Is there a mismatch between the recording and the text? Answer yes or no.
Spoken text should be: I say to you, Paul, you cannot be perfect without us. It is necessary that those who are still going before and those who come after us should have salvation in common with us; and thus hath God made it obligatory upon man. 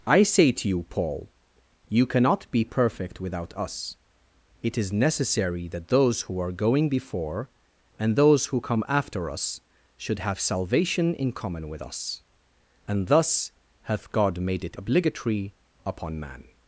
yes